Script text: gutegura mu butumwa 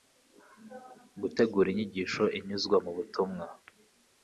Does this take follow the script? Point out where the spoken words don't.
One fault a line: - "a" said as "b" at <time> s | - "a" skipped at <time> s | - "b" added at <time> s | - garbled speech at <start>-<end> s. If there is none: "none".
- "inyigisho inyuzwa" added at 1.7 s